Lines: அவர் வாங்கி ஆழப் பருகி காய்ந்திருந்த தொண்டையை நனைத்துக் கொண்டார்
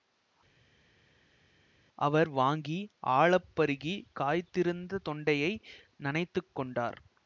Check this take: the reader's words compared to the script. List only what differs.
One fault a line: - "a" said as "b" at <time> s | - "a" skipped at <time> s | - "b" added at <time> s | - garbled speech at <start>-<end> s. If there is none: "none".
none